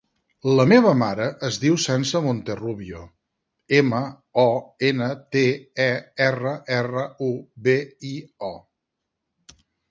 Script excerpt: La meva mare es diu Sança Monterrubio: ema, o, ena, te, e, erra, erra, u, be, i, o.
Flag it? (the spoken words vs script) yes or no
no